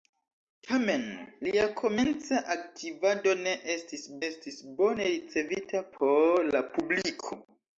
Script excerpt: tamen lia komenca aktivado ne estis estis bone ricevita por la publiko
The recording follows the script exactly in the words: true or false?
true